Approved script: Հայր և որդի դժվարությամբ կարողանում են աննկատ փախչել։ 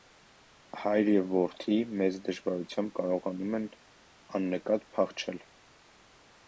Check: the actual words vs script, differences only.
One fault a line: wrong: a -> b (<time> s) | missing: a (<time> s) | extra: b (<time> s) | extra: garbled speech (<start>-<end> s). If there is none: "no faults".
extra: մեծ (2.0 s)